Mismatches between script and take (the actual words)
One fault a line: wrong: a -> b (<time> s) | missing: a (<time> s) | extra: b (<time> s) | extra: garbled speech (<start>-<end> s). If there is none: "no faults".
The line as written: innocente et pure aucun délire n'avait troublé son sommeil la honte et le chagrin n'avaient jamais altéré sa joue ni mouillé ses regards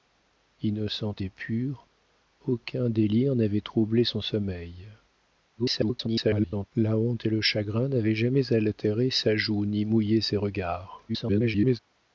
extra: garbled speech (5.6-6.7 s)
extra: garbled speech (11.1-11.8 s)